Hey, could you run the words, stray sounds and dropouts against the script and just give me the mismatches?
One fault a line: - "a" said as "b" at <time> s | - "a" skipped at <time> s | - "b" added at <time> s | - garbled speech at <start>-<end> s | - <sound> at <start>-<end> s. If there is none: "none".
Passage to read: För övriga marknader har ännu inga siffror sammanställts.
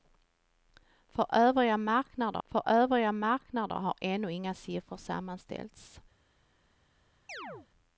- "för övriga marknader" added at 2.4 s
- chirp at 7.3-7.7 s